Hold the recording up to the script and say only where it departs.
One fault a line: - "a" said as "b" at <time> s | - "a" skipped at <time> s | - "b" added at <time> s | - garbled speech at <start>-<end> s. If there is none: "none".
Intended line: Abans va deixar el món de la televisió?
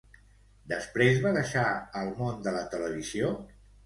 - "Abans" said as "Després" at 0.7 s